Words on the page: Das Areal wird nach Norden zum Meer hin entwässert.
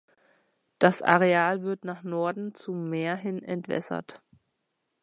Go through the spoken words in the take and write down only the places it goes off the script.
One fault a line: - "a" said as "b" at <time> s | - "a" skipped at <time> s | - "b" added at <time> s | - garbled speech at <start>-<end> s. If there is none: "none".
none